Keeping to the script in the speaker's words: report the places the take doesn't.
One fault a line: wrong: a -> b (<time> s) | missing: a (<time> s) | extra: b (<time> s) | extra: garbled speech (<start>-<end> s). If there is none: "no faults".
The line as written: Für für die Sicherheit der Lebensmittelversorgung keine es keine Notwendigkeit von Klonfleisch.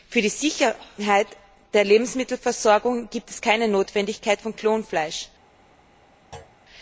missing: für (0.2 s)
wrong: keine -> gibt (3.1 s)